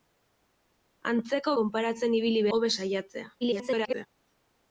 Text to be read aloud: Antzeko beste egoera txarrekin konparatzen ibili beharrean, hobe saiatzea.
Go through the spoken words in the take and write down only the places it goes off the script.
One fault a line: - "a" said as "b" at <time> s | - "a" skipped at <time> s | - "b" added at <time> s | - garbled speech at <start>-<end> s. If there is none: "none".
- "beste egoera txarrekin" skipped at 1.5 s
- "beharrean" skipped at 2.5 s
- garbled speech at 3.4-4.1 s